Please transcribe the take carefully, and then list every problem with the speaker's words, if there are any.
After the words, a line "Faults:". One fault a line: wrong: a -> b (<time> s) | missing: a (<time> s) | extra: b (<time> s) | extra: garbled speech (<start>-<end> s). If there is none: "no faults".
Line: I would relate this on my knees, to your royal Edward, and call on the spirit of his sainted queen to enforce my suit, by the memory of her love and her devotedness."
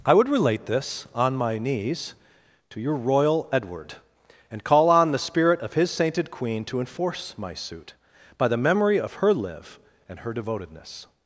I would relate this on my knees, to your royal Edward, and call on the spirit of his sainted queen to enforce my suit, by the memory of her live and her devotedness."
Faults:
wrong: love -> live (9.3 s)